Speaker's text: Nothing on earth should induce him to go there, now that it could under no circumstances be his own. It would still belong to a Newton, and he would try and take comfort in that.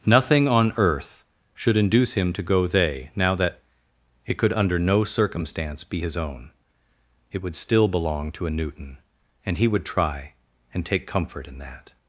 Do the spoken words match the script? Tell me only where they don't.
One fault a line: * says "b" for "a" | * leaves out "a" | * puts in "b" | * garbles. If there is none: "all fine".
* says "they" for "there"
* says "circumstance" for "circumstances"